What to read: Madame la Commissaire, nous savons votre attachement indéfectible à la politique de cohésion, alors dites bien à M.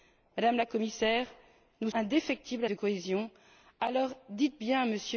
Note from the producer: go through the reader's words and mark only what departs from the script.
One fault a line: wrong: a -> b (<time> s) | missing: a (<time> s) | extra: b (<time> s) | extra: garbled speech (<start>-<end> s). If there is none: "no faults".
missing: savons votre attachement (1.9 s)
missing: la politique (2.7 s)